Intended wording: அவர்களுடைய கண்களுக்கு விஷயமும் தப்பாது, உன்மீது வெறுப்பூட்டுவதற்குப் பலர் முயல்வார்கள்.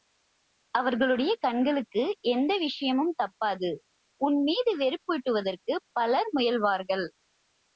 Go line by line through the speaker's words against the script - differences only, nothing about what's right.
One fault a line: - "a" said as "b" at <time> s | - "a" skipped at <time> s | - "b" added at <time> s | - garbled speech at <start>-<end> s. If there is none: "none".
- "எந்த" added at 2.3 s